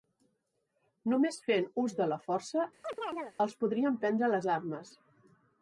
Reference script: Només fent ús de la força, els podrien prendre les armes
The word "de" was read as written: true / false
true